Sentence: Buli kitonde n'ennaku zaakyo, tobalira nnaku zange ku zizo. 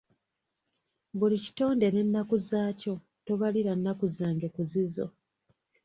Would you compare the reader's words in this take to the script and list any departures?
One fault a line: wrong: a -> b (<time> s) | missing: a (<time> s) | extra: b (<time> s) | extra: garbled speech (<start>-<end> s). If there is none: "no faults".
no faults